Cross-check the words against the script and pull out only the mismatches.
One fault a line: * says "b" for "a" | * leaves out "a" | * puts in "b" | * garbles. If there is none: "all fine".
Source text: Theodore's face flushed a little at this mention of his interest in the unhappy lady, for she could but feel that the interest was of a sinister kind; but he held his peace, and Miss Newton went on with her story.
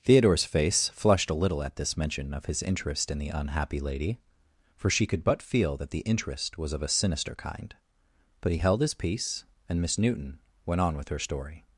all fine